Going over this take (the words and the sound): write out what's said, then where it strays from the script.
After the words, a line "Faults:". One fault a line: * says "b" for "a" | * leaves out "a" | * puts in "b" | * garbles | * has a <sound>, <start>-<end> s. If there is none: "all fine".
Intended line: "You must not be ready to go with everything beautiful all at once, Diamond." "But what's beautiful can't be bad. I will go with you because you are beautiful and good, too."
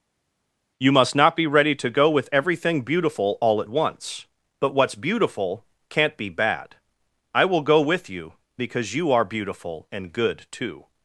"You must not be ready to go with everything beautiful all at once, "But what's beautiful can't be bad. I will go with you because you are beautiful and good, too."
Faults:
* leaves out "Diamond"